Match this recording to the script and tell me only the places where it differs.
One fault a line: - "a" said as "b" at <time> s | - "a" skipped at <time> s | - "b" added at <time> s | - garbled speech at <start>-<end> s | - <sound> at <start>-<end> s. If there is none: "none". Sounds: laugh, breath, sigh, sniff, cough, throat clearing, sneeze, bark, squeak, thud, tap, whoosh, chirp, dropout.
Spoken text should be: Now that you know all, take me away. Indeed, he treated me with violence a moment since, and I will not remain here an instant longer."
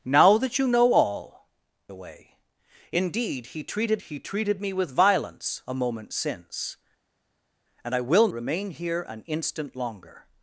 - "take me" skipped at 1.5 s
- "he treated" added at 4.0 s
- "not" skipped at 8.3 s